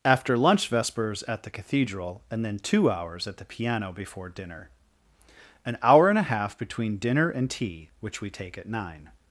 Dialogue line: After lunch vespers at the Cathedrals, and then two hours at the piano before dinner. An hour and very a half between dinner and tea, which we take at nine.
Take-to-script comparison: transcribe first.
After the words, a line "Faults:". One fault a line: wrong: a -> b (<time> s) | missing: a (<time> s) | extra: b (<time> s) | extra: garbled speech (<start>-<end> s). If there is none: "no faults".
After lunch vespers at the Cathedral, and then two hours at the piano before dinner. An hour and a half between dinner and tea, which we take at nine.
Faults:
wrong: Cathedrals -> Cathedral (1.5 s)
missing: very (6.2 s)